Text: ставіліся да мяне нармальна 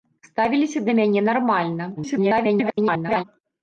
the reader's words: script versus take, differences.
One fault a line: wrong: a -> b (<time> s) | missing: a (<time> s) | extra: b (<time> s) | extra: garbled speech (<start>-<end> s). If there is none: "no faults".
extra: garbled speech (2.0-3.2 s)